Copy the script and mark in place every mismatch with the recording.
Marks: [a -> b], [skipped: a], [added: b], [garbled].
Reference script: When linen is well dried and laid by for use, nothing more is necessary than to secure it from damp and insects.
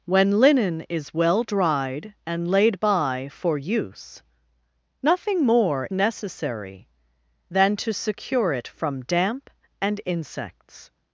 When linen is well dried and laid by for use, nothing more [skipped: is] necessary than to secure it from damp and insects.